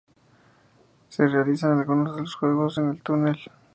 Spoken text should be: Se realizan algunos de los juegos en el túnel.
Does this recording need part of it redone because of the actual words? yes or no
no